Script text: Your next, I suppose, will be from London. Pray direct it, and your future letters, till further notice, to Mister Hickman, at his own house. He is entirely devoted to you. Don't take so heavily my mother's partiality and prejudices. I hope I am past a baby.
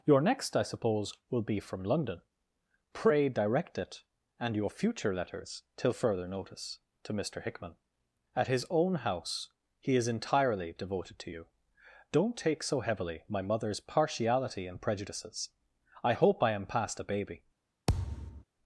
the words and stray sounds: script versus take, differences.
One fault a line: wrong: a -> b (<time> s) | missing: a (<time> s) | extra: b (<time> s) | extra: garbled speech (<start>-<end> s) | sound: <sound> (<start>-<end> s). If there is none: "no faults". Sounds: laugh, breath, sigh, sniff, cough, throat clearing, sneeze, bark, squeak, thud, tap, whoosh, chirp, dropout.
sound: thud (17.9-18.4 s)